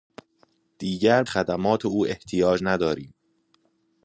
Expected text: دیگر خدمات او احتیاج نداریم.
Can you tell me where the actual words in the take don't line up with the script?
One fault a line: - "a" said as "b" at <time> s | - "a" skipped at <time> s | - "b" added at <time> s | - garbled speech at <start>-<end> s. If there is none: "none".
none